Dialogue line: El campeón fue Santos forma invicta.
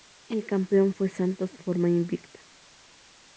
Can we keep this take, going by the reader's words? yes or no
yes